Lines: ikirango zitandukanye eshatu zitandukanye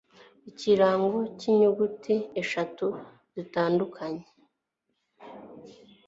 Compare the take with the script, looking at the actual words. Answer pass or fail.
fail